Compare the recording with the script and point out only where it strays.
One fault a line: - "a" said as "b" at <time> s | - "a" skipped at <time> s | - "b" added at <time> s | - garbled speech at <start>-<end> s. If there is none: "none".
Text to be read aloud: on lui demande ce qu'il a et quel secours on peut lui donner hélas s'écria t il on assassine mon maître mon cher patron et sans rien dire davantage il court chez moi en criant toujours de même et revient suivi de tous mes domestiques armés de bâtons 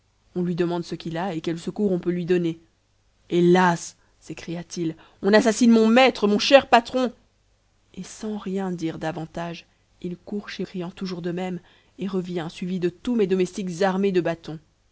- "moi en" skipped at 10.7 s